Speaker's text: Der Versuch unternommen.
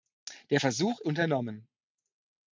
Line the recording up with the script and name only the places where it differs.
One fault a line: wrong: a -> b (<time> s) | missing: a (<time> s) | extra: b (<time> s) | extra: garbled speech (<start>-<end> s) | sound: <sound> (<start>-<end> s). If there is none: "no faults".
no faults